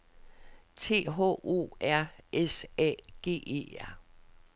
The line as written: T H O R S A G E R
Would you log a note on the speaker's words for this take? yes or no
no